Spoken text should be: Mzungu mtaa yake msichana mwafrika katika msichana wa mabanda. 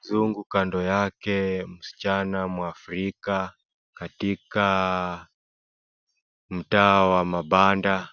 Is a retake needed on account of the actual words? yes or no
yes